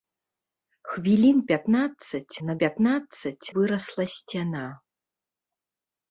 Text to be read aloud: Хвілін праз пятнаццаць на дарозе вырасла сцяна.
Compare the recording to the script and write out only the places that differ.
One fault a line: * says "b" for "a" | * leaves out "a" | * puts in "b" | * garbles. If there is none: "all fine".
* leaves out "праз"
* says "пятнаццаць" for "дарозе"